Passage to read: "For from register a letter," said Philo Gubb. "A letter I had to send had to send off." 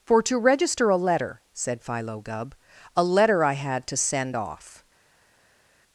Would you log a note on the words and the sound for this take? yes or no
yes